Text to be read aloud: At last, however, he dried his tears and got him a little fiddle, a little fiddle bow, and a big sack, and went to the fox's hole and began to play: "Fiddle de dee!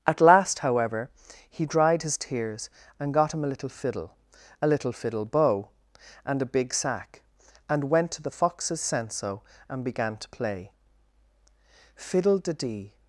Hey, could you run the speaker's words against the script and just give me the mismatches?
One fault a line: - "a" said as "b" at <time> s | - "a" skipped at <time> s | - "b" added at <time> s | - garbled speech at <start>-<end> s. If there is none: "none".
- "hole" said as "senso" at 8.8 s